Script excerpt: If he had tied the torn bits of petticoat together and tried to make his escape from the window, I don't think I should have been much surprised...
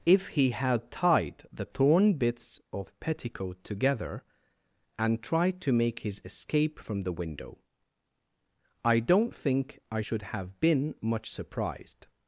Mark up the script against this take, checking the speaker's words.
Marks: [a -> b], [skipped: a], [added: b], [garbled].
If he had tied the torn bits of petticoat together and tried to make his escape from the window, I don't think I should have been much surprised...